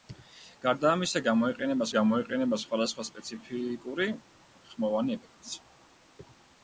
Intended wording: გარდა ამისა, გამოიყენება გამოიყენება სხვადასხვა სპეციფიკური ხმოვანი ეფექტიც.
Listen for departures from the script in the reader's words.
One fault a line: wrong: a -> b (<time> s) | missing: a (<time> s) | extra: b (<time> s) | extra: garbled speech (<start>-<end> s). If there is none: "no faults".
no faults